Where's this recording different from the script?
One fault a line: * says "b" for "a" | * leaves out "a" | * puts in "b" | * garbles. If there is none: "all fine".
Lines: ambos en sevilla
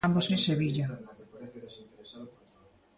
all fine